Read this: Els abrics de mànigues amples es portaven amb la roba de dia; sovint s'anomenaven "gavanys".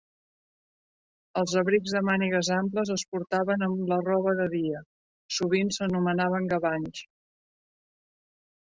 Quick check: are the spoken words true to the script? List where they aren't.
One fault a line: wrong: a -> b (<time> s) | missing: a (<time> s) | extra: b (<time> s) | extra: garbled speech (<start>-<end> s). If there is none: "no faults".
no faults